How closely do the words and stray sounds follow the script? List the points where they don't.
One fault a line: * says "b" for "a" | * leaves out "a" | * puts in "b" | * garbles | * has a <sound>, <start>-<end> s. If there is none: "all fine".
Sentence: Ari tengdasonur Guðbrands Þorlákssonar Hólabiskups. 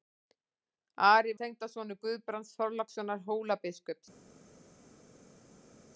all fine